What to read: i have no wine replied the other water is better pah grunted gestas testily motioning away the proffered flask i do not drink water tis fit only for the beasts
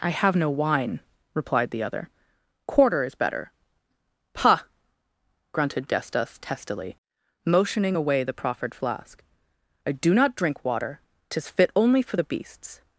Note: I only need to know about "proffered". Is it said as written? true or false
true